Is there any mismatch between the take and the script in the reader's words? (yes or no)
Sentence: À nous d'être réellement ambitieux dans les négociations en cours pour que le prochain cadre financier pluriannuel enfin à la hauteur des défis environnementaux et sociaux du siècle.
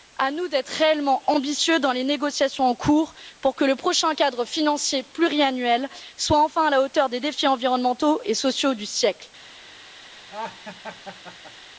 yes